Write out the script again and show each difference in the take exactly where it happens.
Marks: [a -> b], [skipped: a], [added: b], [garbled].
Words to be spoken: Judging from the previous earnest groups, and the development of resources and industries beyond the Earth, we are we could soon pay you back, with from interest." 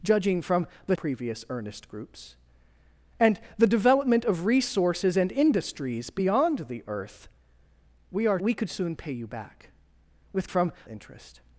Judging from the previous earnest groups, and the development of resources and industries beyond the Earth, we are we could soon pay you back, with from interest."